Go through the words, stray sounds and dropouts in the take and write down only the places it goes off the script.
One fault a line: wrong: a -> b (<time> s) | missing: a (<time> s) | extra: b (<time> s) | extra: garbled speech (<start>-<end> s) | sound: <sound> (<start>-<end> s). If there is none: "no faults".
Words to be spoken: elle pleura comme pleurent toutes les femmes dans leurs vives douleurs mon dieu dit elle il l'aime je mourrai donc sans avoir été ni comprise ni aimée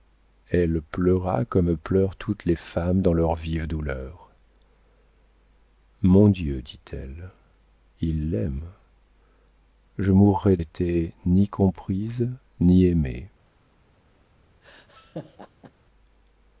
missing: donc sans avoir (10.6 s)
sound: laugh (14.6-15.7 s)